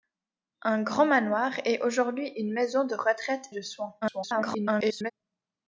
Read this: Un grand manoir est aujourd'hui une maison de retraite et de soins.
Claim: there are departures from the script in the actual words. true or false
true